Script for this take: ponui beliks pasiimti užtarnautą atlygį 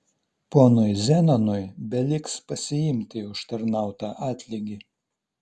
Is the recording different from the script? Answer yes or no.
yes